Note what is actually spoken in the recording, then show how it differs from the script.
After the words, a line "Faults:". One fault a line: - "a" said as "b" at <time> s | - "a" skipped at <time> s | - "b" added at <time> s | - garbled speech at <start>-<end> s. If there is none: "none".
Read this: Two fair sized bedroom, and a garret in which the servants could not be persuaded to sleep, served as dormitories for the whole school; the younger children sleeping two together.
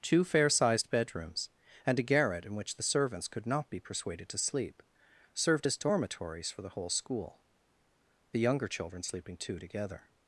Two fair sized bedrooms, and a garret in which the servants could not be persuaded to sleep, served as dormitories for the whole school; the younger children sleeping two together.
Faults:
- "bedroom" said as "bedrooms" at 0.9 s